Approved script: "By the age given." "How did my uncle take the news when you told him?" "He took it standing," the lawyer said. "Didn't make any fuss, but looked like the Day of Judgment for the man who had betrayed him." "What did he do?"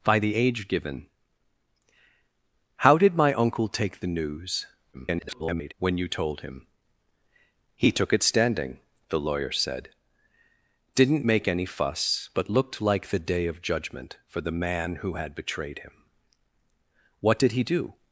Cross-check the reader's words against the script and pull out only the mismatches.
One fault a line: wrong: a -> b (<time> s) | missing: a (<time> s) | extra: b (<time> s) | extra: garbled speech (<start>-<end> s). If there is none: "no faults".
extra: garbled speech (4.9-5.7 s)